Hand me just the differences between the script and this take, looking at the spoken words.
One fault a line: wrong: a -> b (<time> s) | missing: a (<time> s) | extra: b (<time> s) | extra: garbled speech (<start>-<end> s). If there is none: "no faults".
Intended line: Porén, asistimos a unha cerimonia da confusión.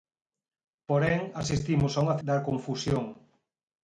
missing: cerimonia (2.2 s)